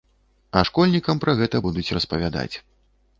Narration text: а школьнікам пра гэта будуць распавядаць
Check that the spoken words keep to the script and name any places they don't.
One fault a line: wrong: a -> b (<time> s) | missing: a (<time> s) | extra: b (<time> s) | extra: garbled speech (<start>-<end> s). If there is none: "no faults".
no faults